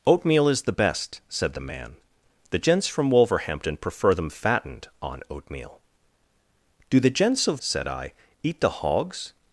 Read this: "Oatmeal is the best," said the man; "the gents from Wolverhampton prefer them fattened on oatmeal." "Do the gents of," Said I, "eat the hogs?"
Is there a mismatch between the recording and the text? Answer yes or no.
no